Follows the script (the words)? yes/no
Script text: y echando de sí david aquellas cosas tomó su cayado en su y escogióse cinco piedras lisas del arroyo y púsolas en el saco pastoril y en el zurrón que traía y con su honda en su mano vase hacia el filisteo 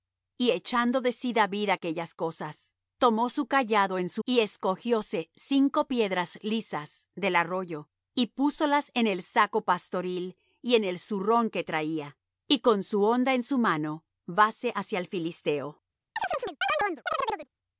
yes